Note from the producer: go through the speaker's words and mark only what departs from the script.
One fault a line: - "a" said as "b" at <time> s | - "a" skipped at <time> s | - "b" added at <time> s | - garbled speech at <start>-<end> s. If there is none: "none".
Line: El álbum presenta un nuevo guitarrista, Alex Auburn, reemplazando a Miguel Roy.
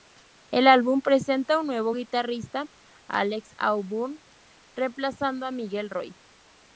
none